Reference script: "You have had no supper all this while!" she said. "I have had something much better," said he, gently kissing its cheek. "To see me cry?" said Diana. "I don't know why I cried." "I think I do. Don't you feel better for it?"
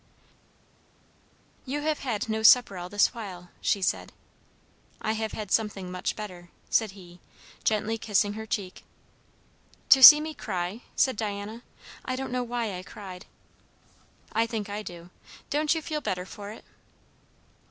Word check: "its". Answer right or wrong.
wrong